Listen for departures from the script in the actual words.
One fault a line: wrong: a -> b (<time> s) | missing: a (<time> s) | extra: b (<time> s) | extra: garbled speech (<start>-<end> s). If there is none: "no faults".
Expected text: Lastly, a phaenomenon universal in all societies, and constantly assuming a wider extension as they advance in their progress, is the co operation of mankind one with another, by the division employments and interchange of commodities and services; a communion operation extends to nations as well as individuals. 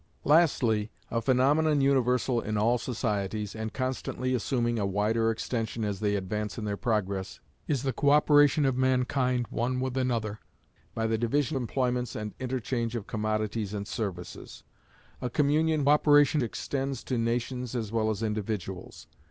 no faults